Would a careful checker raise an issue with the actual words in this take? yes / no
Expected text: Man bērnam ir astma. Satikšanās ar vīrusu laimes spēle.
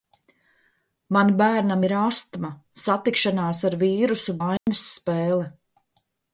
no